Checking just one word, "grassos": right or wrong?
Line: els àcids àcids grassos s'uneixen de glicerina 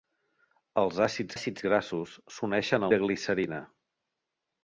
right